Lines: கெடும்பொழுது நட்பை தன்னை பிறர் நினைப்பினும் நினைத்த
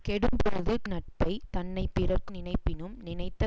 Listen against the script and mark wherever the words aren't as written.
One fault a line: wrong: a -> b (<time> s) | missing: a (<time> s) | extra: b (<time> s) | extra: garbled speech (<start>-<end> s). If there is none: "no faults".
no faults